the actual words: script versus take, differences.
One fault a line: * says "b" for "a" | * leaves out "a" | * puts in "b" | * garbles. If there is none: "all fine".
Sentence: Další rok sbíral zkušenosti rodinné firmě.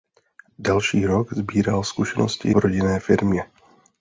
all fine